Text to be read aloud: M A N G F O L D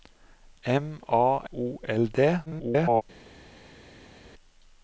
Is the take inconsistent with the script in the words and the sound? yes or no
yes